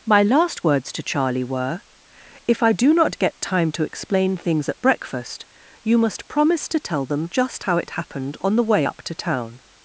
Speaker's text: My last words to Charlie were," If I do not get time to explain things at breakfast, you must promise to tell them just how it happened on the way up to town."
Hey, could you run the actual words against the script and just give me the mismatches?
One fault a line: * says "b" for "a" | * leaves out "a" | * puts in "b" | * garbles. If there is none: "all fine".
all fine